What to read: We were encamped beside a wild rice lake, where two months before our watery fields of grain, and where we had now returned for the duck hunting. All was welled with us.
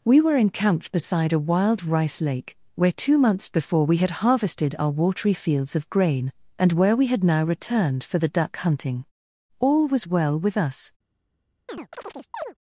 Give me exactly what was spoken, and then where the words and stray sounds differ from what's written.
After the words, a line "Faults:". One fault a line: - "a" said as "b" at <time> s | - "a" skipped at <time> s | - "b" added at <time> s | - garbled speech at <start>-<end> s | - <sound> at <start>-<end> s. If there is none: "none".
We were encamped beside a wild rice lake, where two months before we had harvested our watery fields of grain, and where we had now returned for the duck hunting. All was well with us.
Faults:
- "we had harvested" added at 3.9 s
- "welled" said as "well" at 10.1 s
- chirp at 11.7-12.5 s